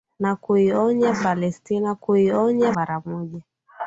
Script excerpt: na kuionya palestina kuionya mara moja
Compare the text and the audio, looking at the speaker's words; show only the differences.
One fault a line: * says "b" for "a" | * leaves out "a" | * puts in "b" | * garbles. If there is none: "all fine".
all fine